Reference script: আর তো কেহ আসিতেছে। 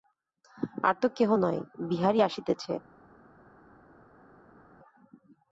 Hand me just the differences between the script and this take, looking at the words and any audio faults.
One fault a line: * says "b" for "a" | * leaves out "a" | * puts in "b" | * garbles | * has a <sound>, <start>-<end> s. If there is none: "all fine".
* puts in "নয় বিহারী"